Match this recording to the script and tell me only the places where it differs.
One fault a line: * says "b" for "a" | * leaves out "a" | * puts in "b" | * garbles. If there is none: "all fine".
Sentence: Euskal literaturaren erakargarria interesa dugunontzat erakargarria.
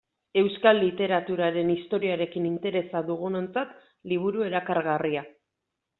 * says "historiarekin" for "erakargarria"
* puts in "liburu"